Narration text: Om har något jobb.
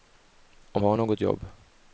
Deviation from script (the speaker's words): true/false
false